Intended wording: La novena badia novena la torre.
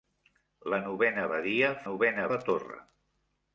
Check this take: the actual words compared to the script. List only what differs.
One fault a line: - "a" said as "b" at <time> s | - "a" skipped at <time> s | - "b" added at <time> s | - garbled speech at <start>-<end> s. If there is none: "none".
none